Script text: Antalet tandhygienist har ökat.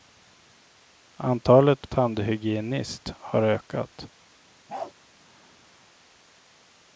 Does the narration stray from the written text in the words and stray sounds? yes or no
yes